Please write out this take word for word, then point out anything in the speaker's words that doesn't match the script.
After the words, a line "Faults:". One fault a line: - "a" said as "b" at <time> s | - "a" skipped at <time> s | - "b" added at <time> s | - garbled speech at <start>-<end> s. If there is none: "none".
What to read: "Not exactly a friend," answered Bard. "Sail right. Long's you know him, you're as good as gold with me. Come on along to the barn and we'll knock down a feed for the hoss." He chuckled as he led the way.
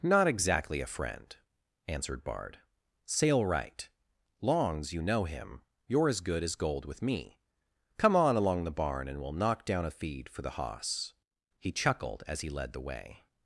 "Not exactly a friend," answered Bard. "Sail right. Long's you know him, you're as good as gold with me. Come on along the barn and we'll knock down a feed for the hoss." He chuckled as he led the way.
Faults:
- "to" skipped at 8.6 s